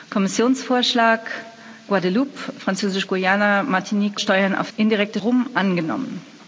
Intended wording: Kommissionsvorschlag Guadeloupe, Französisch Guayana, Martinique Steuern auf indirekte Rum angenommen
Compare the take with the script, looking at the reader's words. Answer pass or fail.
pass